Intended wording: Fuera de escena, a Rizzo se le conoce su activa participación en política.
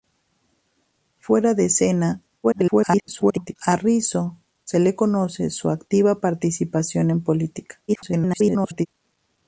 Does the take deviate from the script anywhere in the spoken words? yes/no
yes